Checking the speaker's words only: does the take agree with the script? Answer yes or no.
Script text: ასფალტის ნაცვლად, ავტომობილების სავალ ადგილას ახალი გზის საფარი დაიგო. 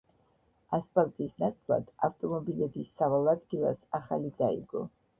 no